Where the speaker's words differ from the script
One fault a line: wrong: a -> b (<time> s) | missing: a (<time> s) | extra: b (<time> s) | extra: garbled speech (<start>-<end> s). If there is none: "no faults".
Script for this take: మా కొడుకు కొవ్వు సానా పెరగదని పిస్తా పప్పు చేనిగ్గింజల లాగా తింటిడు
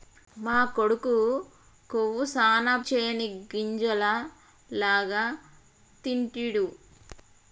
missing: పెరగదని పిస్తా పప్పు (2.7 s)